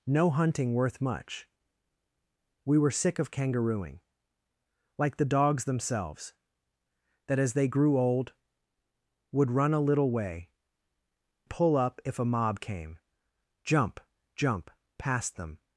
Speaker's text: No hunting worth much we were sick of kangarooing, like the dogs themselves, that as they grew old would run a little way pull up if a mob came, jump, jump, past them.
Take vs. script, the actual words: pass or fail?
pass